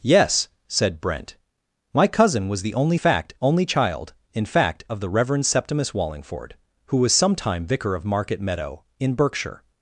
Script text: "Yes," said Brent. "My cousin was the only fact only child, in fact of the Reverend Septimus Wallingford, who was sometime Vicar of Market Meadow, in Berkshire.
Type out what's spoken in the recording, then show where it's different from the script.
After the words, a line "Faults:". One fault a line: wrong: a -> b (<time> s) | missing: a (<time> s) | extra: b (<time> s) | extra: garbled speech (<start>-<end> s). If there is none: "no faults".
"Yes," said Brent. "My cousin was the only fact only child, in fact of the Reverend Septimus Wallingford, who was sometime Vicar of Market Meadow, in Berkshire.
Faults:
no faults